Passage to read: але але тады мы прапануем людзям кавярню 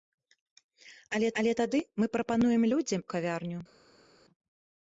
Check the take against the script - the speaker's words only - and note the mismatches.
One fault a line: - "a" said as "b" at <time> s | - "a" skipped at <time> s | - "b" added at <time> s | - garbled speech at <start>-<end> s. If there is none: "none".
none